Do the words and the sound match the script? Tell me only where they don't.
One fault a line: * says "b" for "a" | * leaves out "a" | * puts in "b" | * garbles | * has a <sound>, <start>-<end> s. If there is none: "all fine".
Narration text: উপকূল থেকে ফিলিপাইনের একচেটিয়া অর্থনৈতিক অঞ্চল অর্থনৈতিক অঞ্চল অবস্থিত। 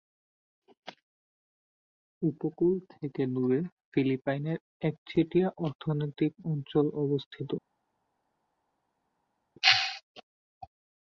* puts in "দূরে"
* leaves out "অর্থনৈতিক অঞ্চল"